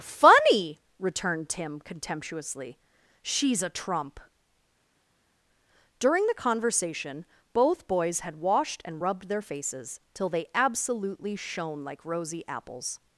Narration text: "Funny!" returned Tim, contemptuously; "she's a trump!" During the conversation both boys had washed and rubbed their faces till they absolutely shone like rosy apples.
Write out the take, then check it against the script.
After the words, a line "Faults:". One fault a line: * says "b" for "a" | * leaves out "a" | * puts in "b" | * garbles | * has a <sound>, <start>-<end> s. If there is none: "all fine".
"Funny!" returned Tim, contemptuously; "she's a trump!" During the conversation both boys had washed and rubbed their faces till they absolutely shone like rosy apples.
Faults:
all fine